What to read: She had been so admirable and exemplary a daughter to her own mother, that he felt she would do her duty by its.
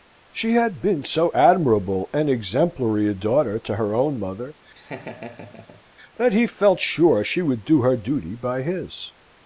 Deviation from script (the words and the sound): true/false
true